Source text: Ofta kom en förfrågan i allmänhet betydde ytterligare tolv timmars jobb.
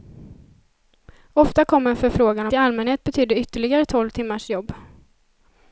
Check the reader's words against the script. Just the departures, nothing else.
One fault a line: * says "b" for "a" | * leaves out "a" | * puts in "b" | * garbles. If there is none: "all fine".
all fine